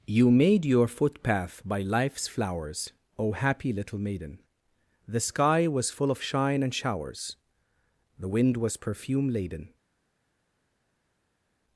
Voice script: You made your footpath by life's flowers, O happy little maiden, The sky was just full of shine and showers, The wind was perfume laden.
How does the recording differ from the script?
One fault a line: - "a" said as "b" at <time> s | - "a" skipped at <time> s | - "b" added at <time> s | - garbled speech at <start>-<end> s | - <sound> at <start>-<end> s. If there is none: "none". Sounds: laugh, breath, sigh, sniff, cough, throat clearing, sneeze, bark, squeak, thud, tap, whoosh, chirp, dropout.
- "just" skipped at 5.9 s